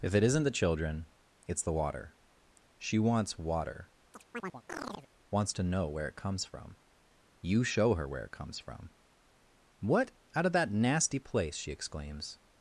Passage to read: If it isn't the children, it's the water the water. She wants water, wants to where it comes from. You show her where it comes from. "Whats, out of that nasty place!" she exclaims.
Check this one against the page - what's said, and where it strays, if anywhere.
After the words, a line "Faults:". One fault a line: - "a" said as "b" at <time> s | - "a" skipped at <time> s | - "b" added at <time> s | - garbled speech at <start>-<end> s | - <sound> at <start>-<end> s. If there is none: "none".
If it isn't the children, it's the water. She wants water, wants to know where it comes from. You show her where it comes from. "What, out of that nasty place!" she exclaims.
Faults:
- "the water" skipped at 2.1 s
- chirp at 4.1-5.1 s
- "know" added at 5.6 s
- "Whats" said as "What" at 9.8 s